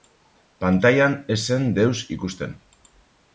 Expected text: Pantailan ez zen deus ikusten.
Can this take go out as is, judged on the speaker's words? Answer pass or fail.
pass